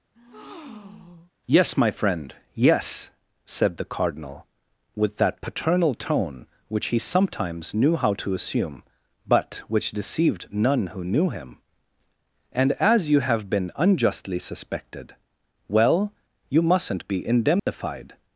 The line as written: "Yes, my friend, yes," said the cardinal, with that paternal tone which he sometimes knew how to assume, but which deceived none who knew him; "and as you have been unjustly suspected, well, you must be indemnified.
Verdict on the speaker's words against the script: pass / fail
fail